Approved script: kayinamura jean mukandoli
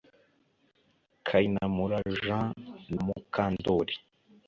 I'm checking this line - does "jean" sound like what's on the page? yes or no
yes